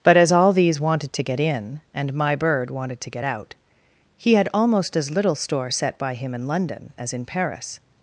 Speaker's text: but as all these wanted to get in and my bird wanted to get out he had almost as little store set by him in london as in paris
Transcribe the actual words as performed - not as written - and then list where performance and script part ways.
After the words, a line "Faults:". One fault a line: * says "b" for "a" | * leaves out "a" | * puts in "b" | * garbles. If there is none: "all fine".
but as all these wanted to get in and my bird wanted to get out he had almost as little store set by him in london as in paris
Faults:
all fine